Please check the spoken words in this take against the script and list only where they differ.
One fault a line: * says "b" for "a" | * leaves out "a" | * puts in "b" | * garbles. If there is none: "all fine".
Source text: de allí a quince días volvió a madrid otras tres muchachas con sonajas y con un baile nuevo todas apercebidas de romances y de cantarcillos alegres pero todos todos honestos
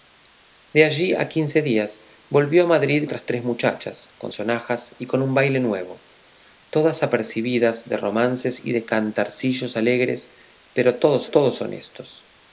all fine